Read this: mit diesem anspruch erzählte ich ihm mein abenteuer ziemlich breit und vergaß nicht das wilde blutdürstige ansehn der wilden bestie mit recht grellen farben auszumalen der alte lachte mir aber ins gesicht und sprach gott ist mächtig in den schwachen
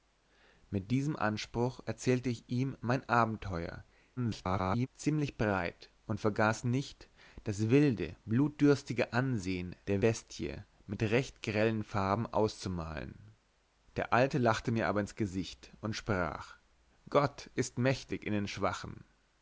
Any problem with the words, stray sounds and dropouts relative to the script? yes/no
yes